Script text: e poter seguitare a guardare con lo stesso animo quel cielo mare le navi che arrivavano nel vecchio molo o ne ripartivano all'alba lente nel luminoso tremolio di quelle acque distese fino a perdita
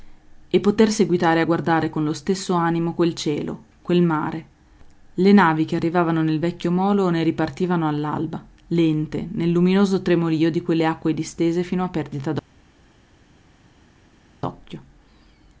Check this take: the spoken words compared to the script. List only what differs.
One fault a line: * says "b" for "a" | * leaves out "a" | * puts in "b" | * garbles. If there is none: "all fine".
* puts in "quel"